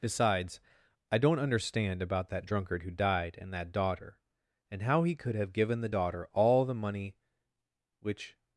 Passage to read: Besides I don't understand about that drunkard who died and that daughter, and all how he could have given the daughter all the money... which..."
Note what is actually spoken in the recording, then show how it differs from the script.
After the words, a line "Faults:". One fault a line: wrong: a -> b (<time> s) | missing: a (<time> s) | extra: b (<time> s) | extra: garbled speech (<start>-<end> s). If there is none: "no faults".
Besides I don't understand about that drunkard who died and that daughter, and how he could have given the daughter all the money... which..."
Faults:
missing: all (4.8 s)